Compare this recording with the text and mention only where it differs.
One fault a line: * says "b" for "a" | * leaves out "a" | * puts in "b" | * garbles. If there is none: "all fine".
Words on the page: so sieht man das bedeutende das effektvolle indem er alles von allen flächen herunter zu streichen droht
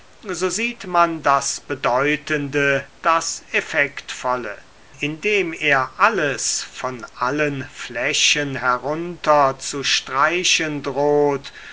all fine